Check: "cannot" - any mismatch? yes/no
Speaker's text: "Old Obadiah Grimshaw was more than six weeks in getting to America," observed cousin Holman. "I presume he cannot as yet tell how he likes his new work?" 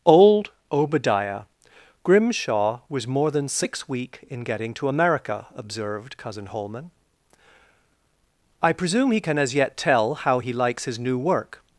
yes